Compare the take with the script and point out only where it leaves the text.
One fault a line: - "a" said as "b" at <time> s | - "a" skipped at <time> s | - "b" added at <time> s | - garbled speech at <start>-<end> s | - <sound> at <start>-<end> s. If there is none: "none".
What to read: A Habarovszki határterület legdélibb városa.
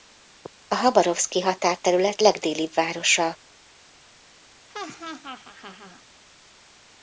- laugh at 4.7-6.0 s